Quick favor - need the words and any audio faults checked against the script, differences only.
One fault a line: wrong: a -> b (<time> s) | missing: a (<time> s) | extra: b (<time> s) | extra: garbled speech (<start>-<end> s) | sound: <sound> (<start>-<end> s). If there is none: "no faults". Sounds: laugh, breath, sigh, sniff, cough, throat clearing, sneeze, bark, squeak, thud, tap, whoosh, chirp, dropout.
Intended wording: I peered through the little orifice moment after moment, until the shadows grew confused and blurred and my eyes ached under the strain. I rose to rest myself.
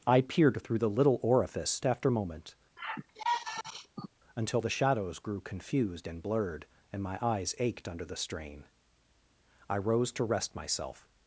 missing: moment (1.8 s)
sound: sigh (2.8-4.1 s)